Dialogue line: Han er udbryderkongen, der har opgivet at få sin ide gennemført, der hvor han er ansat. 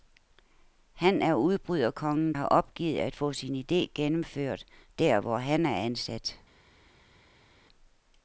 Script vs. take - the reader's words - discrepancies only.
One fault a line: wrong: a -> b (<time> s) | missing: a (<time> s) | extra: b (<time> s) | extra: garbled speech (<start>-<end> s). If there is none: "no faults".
missing: der (2.3 s)